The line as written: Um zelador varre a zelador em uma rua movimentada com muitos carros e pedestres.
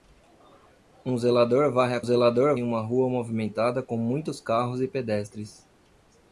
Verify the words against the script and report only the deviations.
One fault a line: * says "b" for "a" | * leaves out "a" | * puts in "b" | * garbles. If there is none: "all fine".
all fine